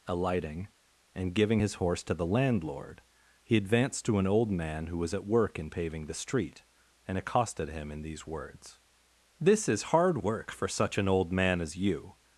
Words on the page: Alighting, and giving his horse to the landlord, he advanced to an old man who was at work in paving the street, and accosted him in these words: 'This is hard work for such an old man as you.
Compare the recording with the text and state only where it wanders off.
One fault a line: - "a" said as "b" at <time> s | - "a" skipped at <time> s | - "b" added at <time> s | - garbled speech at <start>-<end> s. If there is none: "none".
none